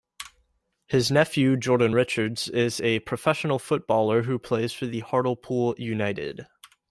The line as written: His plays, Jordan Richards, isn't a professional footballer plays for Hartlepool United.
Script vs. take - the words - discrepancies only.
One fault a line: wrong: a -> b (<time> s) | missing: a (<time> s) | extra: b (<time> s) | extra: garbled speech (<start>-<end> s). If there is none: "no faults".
wrong: plays -> nephew (1.1 s)
wrong: isn't -> is (2.5 s)
extra: who (4.2 s)